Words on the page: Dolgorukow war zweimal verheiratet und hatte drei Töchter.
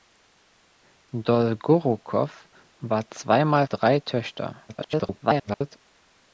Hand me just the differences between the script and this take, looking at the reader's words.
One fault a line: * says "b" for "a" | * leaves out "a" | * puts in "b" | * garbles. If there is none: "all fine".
* leaves out "verheiratet und hatte"
* garbles